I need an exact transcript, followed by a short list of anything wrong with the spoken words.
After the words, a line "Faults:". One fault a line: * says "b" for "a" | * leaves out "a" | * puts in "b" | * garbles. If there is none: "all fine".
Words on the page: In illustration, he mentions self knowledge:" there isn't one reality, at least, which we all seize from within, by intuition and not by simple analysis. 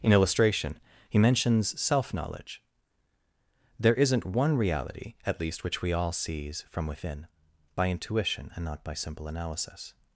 In illustration, he mentions self knowledge:" there isn't one reality, at least, which we all seize from within, by intuition and not by simple analysis.
Faults:
all fine